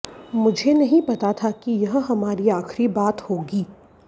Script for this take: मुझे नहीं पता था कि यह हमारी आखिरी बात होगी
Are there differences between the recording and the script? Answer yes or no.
no